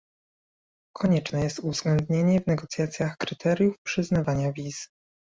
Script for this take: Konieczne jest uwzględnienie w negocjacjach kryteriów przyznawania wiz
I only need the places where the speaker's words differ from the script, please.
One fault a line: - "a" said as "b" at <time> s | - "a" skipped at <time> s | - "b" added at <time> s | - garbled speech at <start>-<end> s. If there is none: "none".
none